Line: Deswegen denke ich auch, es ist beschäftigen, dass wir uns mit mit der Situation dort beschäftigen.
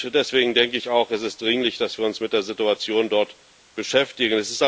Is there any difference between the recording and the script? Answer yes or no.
yes